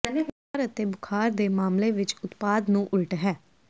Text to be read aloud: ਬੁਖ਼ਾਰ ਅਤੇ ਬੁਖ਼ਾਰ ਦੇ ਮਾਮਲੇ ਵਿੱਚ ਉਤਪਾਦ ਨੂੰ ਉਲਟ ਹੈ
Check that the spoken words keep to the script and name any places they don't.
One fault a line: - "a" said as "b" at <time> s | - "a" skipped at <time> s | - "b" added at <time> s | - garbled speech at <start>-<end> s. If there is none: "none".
none